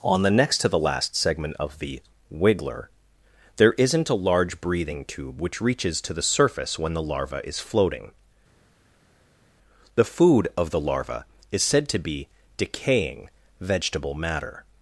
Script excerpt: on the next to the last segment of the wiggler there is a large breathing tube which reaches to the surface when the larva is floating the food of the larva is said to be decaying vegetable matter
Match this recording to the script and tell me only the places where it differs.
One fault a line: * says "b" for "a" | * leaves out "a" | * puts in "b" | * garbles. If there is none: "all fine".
* says "isn't" for "is"